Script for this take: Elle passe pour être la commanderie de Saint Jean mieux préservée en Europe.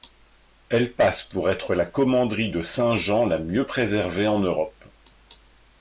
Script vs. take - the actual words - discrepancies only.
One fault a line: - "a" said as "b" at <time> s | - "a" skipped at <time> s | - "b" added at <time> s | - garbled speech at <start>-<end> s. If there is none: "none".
- "la" added at 3.3 s